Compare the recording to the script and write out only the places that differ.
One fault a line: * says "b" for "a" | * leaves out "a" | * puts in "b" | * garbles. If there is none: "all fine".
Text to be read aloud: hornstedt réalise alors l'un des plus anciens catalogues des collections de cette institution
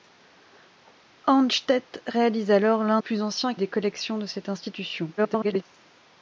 * leaves out "des"
* leaves out "catalogues"
* garbles